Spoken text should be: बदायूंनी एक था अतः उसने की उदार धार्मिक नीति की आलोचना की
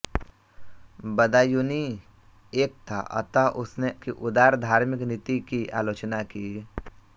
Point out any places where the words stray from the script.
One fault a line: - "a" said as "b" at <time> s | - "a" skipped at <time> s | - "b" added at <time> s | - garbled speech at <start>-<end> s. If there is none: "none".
none